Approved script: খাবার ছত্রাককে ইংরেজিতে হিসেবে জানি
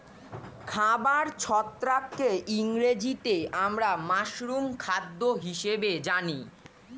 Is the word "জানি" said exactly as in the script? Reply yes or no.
yes